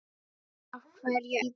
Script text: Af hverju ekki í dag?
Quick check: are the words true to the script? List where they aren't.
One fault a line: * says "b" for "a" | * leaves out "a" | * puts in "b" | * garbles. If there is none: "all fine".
* leaves out "ekki í"